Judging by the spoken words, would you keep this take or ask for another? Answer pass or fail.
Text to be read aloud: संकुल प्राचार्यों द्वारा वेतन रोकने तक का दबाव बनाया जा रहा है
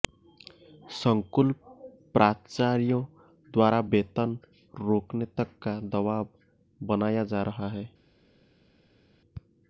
pass